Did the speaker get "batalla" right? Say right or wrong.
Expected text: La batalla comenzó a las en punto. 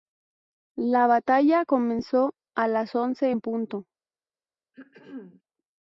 right